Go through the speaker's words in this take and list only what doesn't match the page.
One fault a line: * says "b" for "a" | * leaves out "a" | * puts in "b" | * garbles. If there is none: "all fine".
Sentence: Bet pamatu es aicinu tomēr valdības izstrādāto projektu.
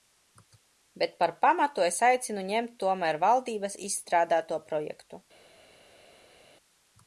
* puts in "par"
* puts in "ņemt"